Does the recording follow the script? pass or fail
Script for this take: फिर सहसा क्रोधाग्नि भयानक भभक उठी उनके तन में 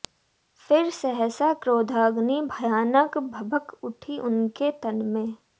pass